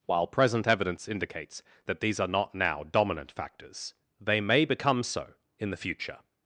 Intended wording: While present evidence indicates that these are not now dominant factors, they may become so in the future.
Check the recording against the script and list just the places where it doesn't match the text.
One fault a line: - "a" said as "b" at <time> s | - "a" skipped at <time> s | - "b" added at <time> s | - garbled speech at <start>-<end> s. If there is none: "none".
none